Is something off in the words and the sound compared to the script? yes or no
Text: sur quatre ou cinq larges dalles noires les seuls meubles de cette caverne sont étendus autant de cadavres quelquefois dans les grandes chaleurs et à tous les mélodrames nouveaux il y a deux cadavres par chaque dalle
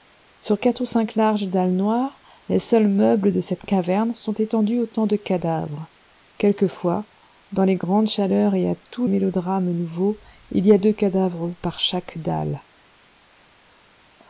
yes